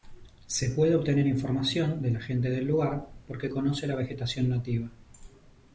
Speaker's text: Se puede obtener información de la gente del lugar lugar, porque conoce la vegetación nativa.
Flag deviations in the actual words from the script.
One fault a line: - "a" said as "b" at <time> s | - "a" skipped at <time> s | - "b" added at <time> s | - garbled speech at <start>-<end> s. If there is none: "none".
- "lugar" skipped at 3.1 s